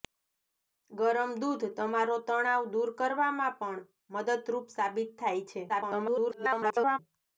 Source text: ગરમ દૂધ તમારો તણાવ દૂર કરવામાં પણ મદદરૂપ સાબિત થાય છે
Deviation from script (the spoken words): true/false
true